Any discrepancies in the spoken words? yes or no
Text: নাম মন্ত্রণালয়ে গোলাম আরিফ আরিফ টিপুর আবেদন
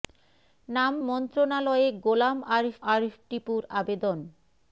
no